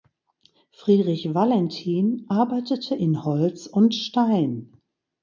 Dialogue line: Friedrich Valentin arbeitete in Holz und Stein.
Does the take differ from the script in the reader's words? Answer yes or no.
no